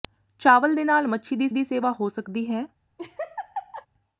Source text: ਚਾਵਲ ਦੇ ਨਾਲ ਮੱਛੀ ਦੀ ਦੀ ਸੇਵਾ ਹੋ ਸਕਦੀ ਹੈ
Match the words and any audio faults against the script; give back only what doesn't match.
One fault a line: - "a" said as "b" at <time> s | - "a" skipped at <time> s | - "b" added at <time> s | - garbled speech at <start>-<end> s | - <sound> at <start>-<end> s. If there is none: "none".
- laugh at 3.0-3.9 s